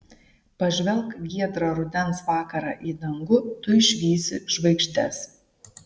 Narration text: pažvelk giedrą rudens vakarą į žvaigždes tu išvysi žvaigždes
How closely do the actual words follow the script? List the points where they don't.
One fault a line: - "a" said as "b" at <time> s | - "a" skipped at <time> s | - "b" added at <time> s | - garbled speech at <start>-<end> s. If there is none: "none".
- "žvaigždes" said as "dangų" at 3.0 s